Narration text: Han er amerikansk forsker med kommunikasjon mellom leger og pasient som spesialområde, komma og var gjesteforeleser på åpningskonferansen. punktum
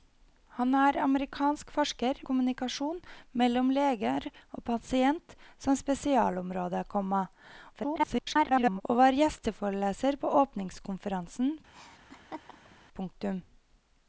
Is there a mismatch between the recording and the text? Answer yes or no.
yes